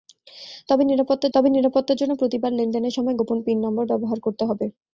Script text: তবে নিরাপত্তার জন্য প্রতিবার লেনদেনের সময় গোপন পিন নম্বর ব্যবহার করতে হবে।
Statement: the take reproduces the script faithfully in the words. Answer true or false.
false